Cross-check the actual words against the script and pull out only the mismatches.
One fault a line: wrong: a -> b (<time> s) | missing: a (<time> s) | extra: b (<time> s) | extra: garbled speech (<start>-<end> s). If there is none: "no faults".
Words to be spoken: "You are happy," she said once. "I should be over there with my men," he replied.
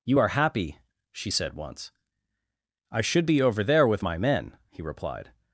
no faults